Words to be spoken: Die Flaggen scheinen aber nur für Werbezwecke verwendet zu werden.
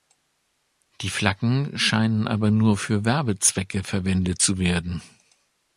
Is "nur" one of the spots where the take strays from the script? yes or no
no